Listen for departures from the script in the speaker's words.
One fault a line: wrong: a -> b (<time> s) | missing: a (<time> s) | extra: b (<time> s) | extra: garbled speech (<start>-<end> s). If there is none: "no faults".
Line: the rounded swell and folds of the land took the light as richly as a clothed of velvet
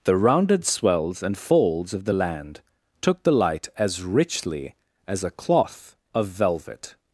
wrong: swell -> swells (0.7 s)
wrong: clothed -> cloth (5.3 s)